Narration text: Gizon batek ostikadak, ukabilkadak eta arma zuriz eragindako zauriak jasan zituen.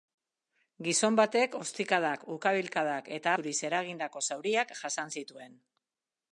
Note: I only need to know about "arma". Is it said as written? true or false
false